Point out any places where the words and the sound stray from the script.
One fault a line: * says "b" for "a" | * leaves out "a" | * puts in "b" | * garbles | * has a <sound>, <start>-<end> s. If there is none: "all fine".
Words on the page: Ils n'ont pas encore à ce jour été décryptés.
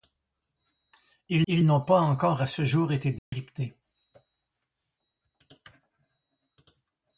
* puts in "ils"
* has a dropout, 3.2-3.3 s